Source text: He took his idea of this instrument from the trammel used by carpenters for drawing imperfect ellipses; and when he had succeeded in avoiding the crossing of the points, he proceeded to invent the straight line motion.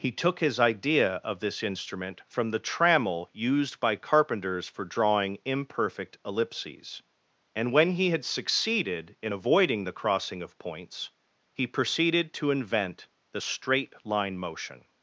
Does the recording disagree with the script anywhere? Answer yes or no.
yes